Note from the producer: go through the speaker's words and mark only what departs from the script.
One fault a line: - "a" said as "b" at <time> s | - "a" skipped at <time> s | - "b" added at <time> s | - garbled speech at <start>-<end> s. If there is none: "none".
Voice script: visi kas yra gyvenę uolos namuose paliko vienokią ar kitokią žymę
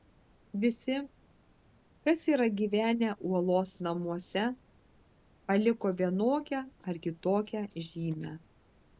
none